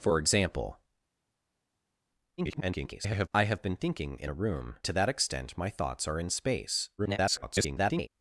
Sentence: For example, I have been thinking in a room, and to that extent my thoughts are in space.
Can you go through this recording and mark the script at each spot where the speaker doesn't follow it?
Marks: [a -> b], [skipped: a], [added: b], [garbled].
For example, [garbled] I have been thinking in a room, [skipped: and] to that extent my thoughts are in space. [garbled]